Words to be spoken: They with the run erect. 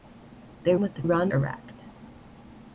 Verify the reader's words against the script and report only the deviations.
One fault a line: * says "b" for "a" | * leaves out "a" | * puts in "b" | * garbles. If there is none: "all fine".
all fine